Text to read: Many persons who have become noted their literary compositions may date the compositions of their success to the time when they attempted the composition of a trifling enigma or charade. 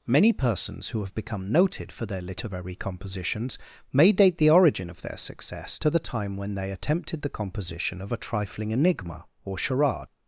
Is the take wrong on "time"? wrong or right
right